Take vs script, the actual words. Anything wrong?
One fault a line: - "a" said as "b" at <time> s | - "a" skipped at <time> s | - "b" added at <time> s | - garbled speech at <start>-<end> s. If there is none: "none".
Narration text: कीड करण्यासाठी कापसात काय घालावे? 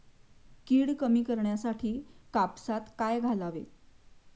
- "कमी" added at 0.9 s